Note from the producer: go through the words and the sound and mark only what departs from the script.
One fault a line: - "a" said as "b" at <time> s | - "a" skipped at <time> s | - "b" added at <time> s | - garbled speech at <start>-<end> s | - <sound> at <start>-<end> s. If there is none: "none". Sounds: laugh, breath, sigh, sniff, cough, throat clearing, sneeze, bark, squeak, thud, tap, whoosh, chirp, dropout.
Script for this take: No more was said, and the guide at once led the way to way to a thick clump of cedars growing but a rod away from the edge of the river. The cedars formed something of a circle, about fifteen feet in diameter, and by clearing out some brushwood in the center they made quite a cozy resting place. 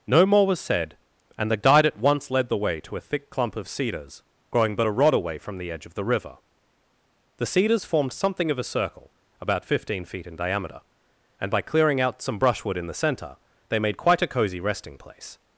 - "way to" skipped at 3.0 s